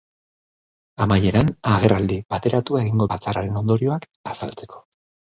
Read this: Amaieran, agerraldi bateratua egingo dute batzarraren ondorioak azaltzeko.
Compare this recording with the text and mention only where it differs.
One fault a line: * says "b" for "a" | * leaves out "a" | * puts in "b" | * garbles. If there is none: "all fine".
* leaves out "dute"